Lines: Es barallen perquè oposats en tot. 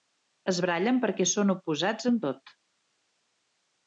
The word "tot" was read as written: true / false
true